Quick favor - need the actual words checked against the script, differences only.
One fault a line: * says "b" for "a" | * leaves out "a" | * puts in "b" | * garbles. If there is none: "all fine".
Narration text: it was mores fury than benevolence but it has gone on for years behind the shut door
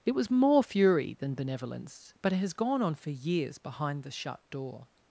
* says "more" for "mores"